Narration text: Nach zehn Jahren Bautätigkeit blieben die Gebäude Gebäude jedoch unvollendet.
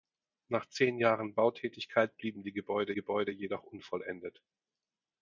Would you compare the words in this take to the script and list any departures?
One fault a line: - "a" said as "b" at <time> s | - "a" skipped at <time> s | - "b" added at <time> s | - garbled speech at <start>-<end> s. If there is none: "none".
none